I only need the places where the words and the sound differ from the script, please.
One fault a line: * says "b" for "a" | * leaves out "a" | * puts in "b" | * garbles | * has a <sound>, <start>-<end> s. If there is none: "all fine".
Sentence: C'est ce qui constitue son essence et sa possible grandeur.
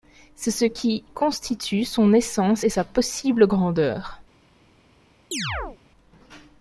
* has a chirp, 5.3-5.8 s